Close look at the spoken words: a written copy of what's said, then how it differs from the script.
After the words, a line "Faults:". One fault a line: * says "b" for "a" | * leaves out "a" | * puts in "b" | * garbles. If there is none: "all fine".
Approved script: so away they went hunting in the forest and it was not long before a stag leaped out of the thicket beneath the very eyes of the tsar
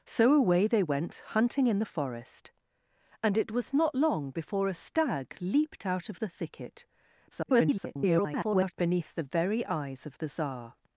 so away they went hunting in the forest and it was not long before a stag leaped out of the thicket [garbled] beneath the very eyes of the tsar
Faults:
* garbles